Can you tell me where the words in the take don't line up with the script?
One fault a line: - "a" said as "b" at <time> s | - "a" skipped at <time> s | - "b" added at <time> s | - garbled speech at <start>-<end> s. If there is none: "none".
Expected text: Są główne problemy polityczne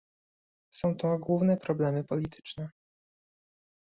- "to" added at 0.9 s